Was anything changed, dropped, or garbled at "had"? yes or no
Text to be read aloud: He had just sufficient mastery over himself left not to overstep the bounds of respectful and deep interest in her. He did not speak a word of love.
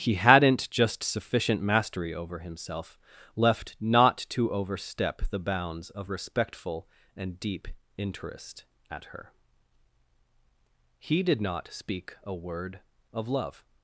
yes